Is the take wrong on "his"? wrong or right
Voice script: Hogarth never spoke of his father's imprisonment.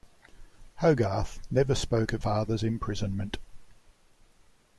wrong